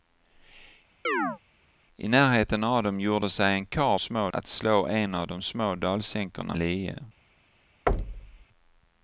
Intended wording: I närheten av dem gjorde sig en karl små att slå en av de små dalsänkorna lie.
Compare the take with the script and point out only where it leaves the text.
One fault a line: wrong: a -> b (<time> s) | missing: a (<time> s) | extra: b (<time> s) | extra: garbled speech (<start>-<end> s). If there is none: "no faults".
no faults